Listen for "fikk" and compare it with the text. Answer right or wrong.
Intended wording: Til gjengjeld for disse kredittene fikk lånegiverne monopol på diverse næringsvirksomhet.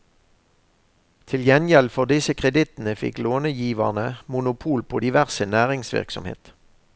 right